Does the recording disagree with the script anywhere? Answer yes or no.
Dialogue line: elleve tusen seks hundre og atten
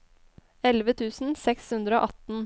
no